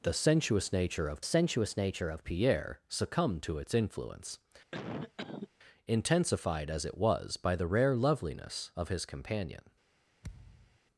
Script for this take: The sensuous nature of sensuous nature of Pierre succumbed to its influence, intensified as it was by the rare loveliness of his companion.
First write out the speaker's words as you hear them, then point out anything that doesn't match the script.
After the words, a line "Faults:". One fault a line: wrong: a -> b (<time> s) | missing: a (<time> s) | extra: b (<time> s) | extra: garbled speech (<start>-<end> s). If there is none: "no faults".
The sensuous nature of sensuous nature of Pierre succumbed to its influence, intensified as it was by the rare loveliness of his companion.
Faults:
no faults